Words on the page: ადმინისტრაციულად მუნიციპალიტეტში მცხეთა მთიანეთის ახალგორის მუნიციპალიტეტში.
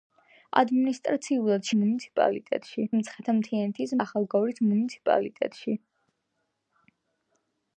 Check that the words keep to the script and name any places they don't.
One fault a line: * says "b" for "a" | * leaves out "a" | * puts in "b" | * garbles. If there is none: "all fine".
all fine